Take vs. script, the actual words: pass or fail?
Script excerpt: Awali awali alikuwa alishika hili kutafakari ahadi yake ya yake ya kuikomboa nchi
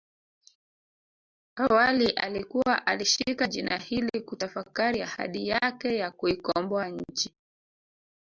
fail